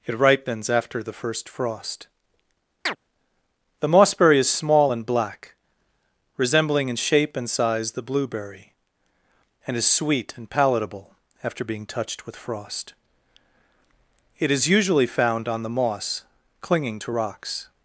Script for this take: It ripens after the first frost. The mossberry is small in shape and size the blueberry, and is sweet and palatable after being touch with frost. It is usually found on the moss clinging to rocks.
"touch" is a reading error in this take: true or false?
true